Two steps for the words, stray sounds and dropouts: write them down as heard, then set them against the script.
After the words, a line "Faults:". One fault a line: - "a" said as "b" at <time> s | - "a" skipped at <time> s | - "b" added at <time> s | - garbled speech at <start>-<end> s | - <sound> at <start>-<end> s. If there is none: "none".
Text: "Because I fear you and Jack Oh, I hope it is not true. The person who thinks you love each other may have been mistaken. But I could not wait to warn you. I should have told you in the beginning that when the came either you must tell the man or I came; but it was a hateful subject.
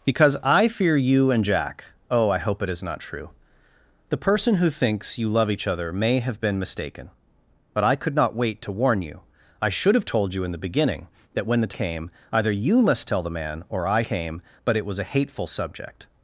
"Because I fear you and Jack Oh, I hope it is not true. The person who thinks you love each other may have been mistaken. But I could not wait to warn you. I should have told you in the beginning that when the came either you must tell the man or I came; but it was a hateful subject.
Faults:
none